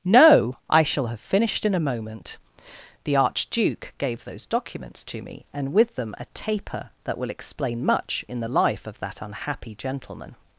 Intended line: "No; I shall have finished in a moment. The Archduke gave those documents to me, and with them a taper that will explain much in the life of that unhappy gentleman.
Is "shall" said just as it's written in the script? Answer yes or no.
yes